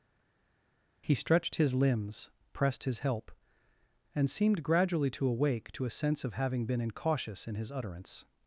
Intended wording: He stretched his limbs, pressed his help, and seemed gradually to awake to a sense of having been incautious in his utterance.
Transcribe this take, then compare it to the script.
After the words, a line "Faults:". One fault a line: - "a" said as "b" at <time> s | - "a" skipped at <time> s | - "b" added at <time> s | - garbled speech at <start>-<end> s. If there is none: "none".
He stretched his limbs, pressed his help, and seemed gradually to awake to a sense of having been incautious in his utterance.
Faults:
none